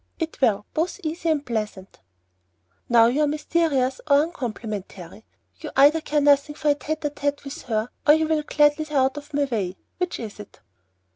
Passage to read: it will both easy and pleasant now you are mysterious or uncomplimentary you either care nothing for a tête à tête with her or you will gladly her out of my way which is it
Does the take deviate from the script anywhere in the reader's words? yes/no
no